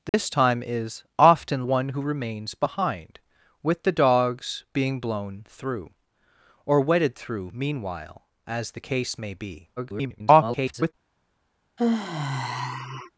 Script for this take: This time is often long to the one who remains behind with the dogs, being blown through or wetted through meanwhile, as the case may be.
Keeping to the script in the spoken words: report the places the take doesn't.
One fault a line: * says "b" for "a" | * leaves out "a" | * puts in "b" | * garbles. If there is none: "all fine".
* leaves out "long to the"
* garbles